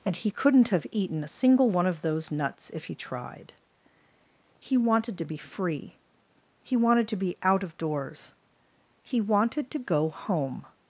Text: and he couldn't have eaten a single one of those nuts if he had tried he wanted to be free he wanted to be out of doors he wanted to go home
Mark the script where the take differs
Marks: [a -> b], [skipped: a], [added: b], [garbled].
and he couldn't have eaten a single one of those nuts if he [skipped: had] tried he wanted to be free he wanted to be out of doors he wanted to go home